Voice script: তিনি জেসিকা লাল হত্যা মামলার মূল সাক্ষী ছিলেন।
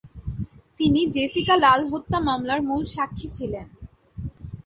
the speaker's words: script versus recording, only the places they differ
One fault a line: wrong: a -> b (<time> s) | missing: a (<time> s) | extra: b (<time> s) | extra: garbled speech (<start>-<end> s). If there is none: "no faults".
no faults